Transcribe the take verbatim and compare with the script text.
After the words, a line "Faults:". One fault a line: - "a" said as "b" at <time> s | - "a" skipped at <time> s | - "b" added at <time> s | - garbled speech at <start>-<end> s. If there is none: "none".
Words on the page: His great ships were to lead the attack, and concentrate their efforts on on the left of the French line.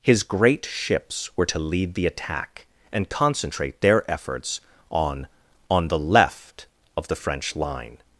His great ships were to lead the attack, and concentrate their efforts on on the left of the French line.
Faults:
none